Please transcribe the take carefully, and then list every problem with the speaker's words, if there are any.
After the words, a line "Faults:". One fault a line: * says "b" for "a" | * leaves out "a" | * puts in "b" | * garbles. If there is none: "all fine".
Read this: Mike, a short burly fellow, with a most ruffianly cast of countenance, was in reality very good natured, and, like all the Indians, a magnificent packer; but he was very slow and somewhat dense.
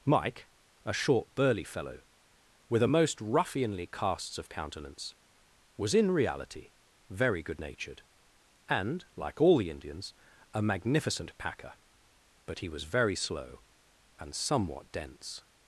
Mike, a short burly fellow, with a most ruffianly casts of countenance, was in reality very good natured, and, like all the Indians, a magnificent packer; but he was very slow and somewhat dense.
Faults:
* says "casts" for "cast"